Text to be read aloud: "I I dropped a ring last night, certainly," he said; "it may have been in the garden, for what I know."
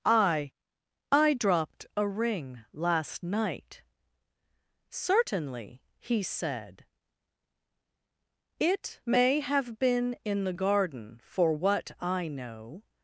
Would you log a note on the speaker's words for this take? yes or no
no